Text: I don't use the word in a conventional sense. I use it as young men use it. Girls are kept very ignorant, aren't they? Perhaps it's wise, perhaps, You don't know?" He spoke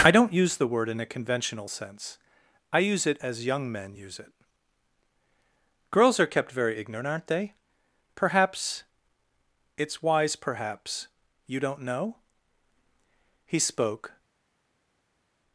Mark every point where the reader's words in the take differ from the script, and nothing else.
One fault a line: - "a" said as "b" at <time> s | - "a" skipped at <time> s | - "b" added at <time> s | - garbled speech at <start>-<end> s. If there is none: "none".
none